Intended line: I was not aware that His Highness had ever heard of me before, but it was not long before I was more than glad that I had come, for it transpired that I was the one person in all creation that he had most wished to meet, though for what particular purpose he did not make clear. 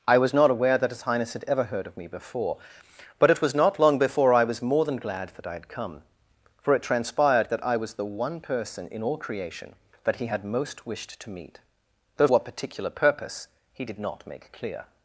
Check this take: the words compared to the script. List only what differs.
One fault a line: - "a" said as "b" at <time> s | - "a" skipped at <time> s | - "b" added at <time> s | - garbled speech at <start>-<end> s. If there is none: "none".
- "for" skipped at 12.3 s